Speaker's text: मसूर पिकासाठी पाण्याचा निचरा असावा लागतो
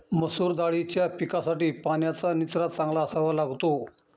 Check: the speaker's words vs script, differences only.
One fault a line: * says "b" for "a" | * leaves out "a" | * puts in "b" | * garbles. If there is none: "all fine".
* puts in "दाळीच्या"
* puts in "चांगला"